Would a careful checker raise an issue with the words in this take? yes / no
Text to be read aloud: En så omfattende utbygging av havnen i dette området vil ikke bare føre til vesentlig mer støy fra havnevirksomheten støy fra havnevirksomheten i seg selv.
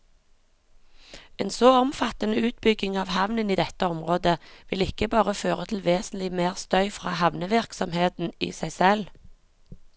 yes